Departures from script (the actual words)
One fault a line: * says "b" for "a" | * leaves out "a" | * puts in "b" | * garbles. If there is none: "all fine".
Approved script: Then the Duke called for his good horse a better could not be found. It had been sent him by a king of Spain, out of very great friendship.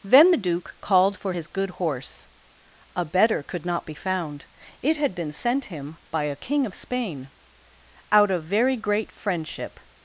all fine